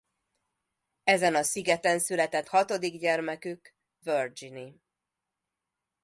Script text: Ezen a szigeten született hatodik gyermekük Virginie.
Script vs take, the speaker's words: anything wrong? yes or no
no